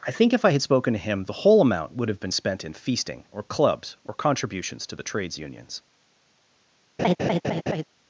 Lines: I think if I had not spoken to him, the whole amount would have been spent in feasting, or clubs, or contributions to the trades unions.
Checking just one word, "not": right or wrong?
wrong